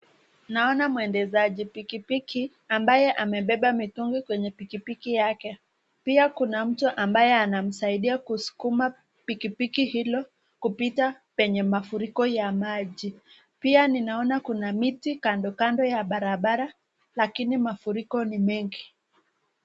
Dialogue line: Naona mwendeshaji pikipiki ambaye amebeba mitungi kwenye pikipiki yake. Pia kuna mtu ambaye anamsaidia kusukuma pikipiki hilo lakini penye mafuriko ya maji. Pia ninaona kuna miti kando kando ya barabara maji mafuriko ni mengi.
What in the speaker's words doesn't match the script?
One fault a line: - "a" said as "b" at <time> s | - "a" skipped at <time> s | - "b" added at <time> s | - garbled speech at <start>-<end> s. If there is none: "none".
- "lakini" said as "kupita" at 10.6 s
- "maji" said as "lakini" at 17.2 s